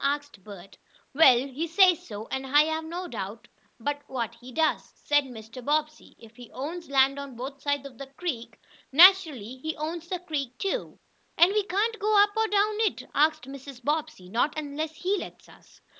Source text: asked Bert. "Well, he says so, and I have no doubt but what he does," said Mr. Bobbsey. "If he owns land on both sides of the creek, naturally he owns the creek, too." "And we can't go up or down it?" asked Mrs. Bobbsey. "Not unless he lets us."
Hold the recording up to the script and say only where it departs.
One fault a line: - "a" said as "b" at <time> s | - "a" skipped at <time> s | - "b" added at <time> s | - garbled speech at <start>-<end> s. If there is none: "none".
none